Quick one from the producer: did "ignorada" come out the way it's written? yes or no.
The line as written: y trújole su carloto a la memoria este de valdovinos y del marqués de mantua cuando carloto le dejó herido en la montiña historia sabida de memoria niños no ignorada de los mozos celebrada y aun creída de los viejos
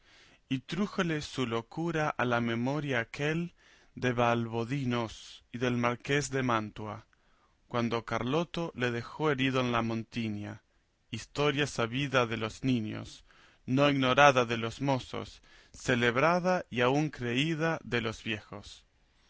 yes